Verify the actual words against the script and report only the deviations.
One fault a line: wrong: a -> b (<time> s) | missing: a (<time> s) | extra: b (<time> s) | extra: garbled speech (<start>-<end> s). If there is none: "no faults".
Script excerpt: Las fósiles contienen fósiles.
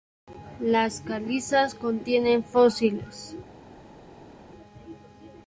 wrong: fósiles -> calizas (1.0 s)